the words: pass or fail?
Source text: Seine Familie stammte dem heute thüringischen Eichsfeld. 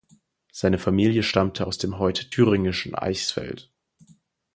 fail